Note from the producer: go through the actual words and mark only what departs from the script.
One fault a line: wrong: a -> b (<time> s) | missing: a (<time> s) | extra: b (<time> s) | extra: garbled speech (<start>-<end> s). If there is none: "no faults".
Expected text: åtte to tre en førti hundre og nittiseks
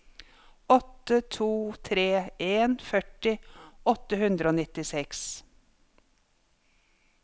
extra: åtte (4.0 s)